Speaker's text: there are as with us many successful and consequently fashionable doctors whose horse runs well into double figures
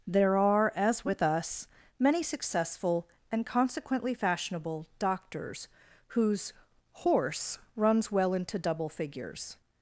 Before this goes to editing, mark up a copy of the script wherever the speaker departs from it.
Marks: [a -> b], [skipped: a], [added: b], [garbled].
there are as with us many successful and consequently fashionable doctors whose horse runs well into double figures